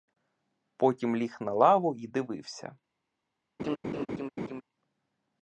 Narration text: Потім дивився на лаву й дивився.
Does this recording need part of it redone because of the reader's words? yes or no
yes